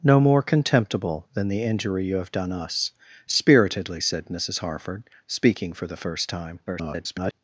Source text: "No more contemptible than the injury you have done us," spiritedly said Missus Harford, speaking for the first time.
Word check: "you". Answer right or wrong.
right